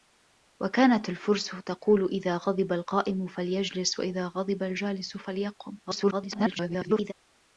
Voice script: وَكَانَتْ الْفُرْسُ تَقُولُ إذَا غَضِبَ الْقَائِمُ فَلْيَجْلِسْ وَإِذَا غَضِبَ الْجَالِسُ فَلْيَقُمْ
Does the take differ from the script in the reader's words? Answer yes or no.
yes